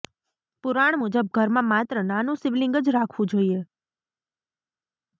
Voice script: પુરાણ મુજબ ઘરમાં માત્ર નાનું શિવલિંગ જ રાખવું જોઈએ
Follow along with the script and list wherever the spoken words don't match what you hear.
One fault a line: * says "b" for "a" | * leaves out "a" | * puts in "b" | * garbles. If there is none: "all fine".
all fine